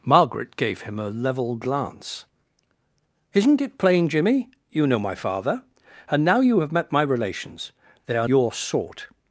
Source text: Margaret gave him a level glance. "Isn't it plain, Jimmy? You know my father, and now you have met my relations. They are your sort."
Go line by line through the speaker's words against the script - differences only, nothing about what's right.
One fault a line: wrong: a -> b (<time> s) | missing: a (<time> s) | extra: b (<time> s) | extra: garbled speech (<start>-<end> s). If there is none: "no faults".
no faults